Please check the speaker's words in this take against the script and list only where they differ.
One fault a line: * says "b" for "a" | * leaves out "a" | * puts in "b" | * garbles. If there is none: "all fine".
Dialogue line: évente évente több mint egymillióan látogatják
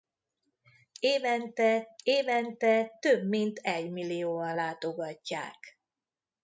all fine